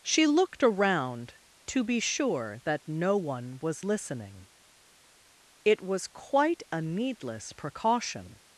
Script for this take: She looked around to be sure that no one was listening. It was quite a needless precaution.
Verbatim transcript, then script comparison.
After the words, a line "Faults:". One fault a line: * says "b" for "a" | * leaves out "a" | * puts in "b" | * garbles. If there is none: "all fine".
She looked around to be sure that no one was listening. It was quite a needless precaution.
Faults:
all fine